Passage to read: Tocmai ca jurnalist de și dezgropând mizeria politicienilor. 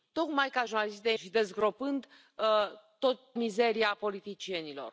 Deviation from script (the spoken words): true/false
false